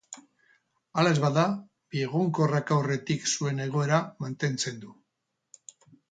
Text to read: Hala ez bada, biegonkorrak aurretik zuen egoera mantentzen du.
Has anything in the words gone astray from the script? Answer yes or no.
no